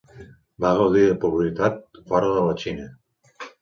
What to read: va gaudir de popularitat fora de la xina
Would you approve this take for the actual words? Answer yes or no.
yes